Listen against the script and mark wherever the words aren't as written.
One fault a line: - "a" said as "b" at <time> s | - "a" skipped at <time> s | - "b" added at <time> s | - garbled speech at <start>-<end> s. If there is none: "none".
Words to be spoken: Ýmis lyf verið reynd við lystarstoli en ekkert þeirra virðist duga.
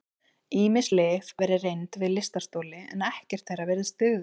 none